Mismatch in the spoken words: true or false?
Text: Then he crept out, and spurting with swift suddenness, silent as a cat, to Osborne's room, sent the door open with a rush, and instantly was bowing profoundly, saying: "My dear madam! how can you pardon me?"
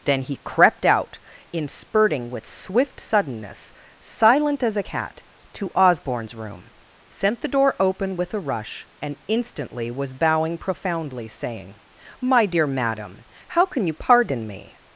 true